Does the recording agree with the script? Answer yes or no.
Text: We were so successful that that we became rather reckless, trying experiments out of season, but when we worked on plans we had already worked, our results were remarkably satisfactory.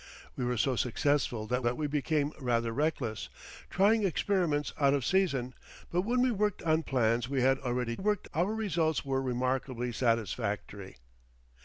yes